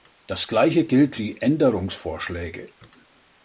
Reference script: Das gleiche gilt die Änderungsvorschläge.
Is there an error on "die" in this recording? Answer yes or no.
no